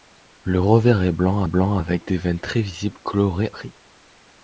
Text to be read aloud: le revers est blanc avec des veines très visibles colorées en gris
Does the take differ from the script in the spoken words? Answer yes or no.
yes